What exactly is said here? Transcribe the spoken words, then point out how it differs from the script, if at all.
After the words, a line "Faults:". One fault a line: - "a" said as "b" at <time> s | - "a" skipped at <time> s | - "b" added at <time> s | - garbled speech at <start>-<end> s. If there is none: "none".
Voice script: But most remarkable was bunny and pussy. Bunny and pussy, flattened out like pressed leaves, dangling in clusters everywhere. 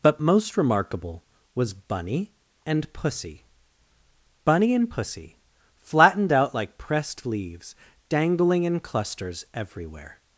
But most remarkable was bunny and pussy. Bunny and pussy, flattened out like pressed leaves, dangling in clusters everywhere.
Faults:
none